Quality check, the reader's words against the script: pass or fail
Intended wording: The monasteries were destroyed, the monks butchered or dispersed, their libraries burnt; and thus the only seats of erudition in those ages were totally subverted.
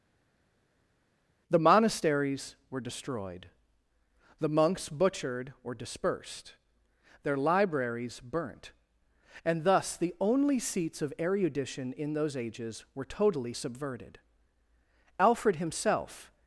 fail